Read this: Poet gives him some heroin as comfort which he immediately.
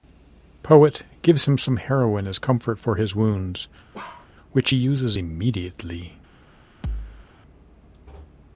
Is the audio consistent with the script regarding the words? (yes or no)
no